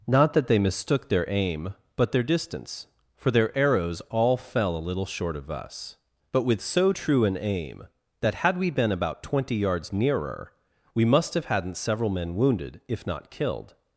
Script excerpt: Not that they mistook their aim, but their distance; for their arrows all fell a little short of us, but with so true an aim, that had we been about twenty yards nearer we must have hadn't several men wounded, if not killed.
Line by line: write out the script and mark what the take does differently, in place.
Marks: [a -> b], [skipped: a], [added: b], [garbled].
Not that they mistook their aim, but their distance; for their arrows all fell a little short of us, but with so true an aim, that had we been about twenty yards nearer we must have hadn't several men wounded, if not killed.